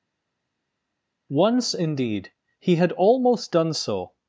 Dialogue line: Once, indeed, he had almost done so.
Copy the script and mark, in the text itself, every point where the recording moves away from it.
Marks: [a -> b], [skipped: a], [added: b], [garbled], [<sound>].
Once, indeed, he had almost done so.